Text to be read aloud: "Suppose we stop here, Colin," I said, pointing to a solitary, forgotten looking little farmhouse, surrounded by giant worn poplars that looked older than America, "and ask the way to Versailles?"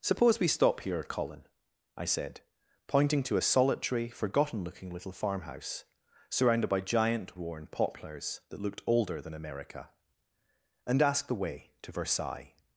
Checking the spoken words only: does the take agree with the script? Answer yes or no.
yes